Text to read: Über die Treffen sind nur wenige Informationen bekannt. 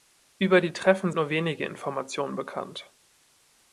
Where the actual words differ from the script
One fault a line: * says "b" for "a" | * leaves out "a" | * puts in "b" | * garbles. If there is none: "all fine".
* leaves out "sind"